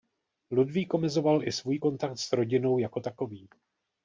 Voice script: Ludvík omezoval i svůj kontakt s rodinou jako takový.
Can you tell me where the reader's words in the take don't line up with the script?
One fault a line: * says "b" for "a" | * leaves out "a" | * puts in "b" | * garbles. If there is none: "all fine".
all fine